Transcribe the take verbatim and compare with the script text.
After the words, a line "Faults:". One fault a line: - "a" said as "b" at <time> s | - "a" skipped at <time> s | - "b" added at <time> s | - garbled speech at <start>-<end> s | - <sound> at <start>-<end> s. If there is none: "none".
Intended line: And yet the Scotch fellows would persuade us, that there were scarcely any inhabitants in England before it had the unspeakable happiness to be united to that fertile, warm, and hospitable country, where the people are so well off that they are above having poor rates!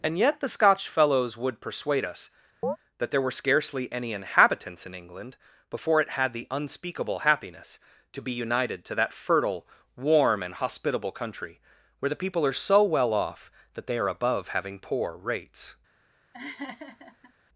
And yet the Scotch fellows would persuade us, that there were scarcely any inhabitants in England before it had the unspeakable happiness to be united to that fertile, warm, and hospitable country, where the people are so well off that they are above having poor rates!
Faults:
- chirp at 2.6-2.8 s
- laugh at 16.3-17.3 s